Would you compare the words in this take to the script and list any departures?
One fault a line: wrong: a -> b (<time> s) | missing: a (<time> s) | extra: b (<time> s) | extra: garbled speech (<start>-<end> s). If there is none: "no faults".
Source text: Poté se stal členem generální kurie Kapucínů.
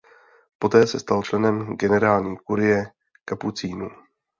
no faults